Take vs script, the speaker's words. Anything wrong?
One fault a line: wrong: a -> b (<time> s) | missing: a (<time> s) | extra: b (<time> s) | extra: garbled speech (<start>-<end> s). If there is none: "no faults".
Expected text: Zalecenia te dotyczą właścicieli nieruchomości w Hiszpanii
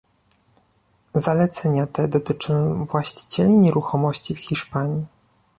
no faults